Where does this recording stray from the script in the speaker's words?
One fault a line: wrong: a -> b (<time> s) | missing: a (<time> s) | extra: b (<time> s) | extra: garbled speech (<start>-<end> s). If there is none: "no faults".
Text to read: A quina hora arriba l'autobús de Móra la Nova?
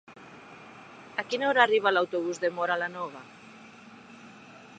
no faults